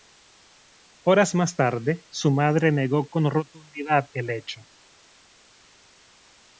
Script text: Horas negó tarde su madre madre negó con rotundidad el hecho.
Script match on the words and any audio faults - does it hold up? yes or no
no